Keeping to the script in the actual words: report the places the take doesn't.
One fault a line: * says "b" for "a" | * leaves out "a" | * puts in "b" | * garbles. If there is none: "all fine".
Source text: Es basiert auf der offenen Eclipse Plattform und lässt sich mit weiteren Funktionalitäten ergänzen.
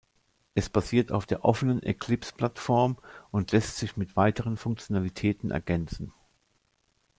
all fine